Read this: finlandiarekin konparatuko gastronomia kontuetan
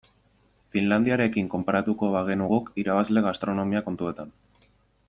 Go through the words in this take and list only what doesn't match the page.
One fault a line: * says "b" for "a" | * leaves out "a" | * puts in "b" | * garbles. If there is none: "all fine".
* puts in "bagenu guk irabazle"